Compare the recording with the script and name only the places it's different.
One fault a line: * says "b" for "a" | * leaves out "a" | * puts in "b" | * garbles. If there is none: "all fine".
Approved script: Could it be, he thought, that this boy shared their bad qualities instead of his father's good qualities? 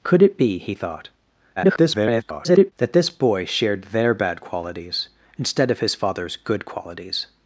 * garbles